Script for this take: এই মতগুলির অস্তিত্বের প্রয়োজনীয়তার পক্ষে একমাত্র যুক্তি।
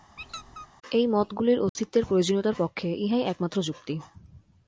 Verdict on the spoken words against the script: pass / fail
fail